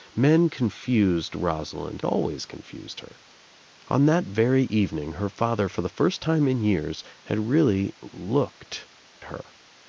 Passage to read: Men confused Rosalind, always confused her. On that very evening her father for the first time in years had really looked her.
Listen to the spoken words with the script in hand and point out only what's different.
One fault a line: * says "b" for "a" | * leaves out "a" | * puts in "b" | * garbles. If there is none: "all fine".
all fine